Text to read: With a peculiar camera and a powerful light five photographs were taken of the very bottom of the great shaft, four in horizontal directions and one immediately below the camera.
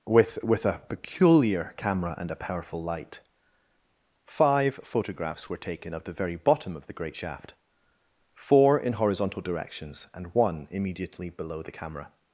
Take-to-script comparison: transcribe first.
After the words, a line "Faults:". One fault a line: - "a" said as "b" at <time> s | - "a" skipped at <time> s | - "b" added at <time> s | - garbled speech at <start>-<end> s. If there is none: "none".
With with a peculiar camera and a powerful light five photographs were taken of the very bottom of the great shaft, four in horizontal directions and one immediately below the camera.
Faults:
- "with" added at 0.4 s